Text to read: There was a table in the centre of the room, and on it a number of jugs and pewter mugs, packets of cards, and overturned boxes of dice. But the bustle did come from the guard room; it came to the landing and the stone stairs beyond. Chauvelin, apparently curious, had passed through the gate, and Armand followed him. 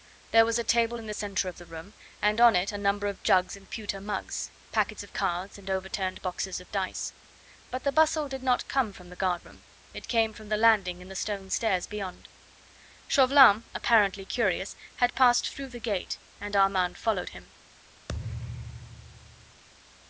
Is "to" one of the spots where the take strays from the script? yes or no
yes